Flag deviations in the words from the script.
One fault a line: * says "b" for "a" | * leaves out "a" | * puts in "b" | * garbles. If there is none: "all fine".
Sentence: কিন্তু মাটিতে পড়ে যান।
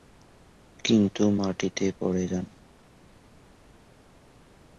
all fine